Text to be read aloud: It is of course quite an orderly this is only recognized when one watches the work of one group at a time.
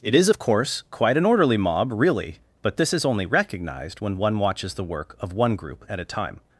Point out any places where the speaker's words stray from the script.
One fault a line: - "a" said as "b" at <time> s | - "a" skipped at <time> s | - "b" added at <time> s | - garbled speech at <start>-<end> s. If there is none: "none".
- "mob really but" added at 1.6 s